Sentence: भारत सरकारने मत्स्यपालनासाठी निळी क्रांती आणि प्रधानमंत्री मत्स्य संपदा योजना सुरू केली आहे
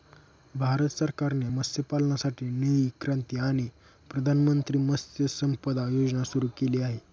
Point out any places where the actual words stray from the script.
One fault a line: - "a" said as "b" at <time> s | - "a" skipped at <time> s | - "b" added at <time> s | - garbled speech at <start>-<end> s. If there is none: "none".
none